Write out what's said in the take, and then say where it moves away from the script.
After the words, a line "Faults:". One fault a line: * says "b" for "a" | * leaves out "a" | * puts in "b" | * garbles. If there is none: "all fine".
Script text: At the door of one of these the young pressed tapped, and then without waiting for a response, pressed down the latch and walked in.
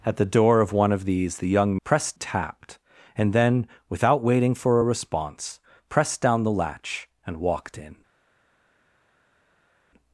At the door of one of these the young pressed tapped, and then without waiting for a response, pressed down the latch and walked in.
Faults:
all fine